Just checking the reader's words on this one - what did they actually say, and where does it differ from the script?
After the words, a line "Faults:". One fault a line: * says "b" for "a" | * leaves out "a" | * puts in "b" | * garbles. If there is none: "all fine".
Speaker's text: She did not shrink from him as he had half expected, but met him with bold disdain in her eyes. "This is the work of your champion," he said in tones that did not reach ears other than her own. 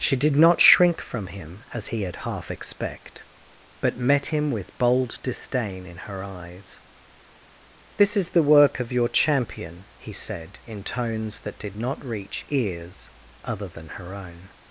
She did not shrink from him as he had half expect, but met him with bold disdain in her eyes. "This is the work of your champion," he said in tones that did not reach ears other than her own.
Faults:
* says "expect" for "expected"